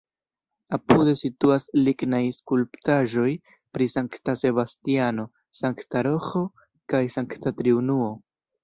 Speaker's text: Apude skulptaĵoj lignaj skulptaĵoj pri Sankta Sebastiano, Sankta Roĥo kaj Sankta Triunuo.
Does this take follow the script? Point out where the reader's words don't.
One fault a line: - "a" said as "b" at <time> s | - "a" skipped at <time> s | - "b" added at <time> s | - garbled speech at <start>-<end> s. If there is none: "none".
- "skulptaĵoj" said as "situas" at 1.2 s